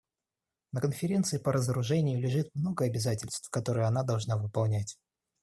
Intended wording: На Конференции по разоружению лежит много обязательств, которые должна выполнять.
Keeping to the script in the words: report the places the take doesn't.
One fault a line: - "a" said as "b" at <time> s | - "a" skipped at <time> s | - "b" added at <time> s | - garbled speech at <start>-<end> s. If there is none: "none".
- "она" added at 3.9 s